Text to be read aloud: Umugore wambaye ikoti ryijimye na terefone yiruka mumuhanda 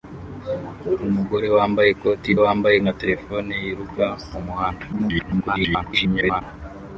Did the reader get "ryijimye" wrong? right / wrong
wrong